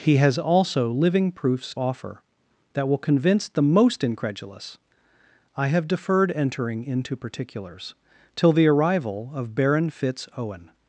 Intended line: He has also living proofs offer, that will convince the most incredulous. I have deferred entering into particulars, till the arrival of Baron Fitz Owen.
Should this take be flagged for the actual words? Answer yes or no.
no